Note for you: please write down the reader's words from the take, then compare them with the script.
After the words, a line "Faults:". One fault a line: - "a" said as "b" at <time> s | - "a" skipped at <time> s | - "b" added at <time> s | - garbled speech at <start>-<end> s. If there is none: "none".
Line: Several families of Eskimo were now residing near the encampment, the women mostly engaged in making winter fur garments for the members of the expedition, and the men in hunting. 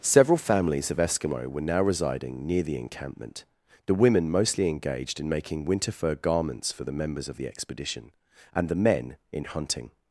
Several families of Eskimo were now residing near the encampment, the women mostly engaged in making winter fur garments for the members of the expedition, and the men in hunting.
Faults:
none